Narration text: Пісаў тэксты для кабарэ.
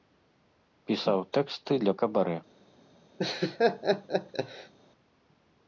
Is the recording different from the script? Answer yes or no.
no